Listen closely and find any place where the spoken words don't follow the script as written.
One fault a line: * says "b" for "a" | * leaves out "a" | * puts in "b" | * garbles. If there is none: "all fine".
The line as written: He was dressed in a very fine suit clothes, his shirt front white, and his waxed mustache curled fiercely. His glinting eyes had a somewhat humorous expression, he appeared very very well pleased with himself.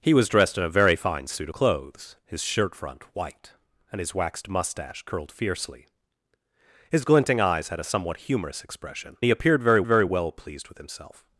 all fine